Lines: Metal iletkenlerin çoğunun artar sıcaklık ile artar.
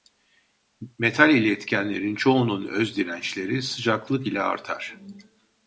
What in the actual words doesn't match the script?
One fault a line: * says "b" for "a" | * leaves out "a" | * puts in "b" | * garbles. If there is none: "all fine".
* says "özdirençleri" for "artar"